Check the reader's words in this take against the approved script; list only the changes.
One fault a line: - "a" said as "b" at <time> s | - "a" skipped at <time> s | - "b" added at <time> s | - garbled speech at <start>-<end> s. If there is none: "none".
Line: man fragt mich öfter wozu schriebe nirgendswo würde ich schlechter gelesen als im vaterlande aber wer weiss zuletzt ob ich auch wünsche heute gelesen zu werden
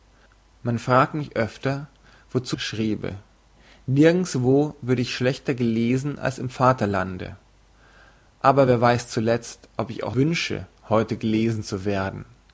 none